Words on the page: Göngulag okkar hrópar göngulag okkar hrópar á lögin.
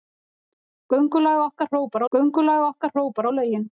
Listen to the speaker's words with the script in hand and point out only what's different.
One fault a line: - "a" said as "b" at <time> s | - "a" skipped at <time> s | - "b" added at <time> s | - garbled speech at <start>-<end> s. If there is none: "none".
none